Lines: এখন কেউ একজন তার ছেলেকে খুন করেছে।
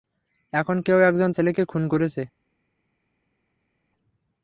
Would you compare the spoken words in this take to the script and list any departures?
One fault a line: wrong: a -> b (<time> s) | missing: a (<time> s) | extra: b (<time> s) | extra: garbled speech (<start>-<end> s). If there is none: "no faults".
missing: তার (1.3 s)